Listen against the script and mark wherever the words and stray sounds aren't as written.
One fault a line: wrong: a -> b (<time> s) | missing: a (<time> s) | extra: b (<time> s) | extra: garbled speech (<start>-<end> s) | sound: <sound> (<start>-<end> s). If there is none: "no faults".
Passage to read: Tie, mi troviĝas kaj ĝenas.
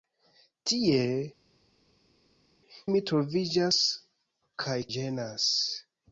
no faults